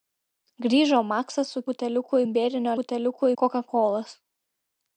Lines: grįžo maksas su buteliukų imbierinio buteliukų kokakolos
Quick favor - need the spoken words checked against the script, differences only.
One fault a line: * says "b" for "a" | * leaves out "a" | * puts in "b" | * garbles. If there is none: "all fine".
all fine